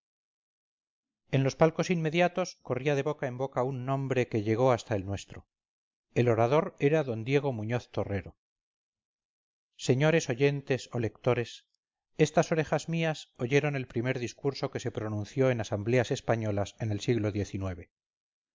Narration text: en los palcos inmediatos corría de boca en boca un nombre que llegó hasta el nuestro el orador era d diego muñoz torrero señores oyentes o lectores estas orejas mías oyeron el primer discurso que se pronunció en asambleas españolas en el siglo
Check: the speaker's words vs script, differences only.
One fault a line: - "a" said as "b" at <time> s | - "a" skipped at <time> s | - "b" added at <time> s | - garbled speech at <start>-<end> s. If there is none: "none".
none